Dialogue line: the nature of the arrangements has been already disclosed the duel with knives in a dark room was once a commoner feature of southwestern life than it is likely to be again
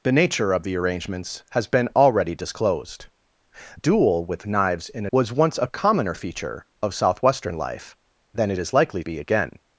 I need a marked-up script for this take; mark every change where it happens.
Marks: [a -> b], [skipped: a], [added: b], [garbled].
the nature of the arrangements has been already disclosed [skipped: the] duel with knives in [skipped: a dark room] was once a commoner feature of southwestern life than it is likely [skipped: to] be again